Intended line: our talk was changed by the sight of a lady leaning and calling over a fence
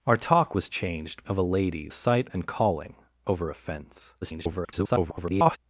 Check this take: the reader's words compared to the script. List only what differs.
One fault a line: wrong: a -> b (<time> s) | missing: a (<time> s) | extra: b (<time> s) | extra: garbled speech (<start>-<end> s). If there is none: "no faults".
missing: by the sight (1.2 s)
wrong: leaning -> sight (1.9 s)
extra: garbled speech (4.2-5.6 s)